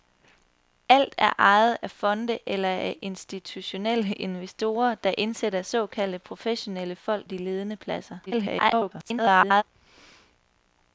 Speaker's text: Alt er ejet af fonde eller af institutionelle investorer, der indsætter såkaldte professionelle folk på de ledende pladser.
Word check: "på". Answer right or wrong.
wrong